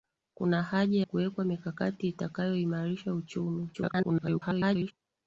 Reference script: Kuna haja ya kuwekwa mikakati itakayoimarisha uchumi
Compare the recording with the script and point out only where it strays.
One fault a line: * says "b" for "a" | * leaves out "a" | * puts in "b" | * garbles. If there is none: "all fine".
* leaves out "ya"
* garbles